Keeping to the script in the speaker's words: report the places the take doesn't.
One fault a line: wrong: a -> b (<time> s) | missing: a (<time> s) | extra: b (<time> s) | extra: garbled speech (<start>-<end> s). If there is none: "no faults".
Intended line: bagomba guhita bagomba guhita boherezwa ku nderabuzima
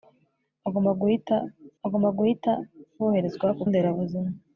no faults